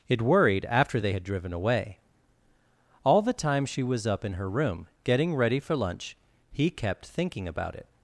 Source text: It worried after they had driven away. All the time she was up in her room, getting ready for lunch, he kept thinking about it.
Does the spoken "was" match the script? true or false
true